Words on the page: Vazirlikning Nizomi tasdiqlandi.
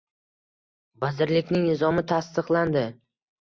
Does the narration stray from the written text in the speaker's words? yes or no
no